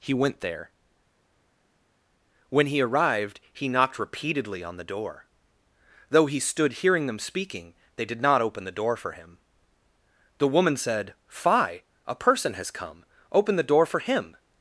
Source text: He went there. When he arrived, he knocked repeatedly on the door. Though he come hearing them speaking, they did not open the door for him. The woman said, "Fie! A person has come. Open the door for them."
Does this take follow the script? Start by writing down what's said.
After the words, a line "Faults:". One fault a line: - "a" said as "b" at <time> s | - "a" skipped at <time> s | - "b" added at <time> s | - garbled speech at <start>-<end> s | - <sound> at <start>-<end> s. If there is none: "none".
He went there. When he arrived, he knocked repeatedly on the door. Though he stood hearing them speaking, they did not open the door for him. The woman said, "Fie! A person has come. Open the door for him."
Faults:
- "come" said as "stood" at 6.4 s
- "them" said as "him" at 14.0 s